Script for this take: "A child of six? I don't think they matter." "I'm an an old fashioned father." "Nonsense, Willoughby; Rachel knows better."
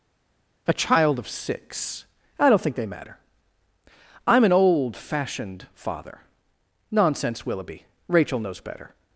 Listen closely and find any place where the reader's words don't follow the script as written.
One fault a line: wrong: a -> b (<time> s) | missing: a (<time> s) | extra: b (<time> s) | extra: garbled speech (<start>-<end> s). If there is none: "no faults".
missing: an (4.5 s)